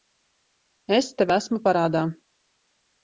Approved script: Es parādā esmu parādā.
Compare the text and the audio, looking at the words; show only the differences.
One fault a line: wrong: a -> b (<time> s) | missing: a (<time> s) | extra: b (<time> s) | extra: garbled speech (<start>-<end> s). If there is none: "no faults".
wrong: parādā -> tev (1.2 s)